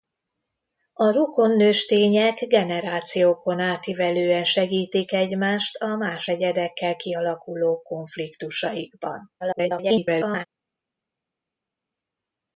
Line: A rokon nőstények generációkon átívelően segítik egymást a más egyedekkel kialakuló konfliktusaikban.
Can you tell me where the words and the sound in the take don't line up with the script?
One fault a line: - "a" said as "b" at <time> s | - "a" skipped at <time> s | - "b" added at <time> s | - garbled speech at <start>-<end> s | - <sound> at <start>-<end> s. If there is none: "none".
- garbled speech at 9.4-10.5 s